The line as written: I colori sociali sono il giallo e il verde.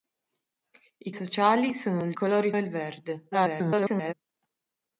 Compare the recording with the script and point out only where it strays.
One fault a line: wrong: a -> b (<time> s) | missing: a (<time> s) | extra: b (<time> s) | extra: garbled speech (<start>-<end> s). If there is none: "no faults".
missing: colori (1.1 s)
wrong: giallo -> colori (2.1 s)
extra: garbled speech (3.3-4.1 s)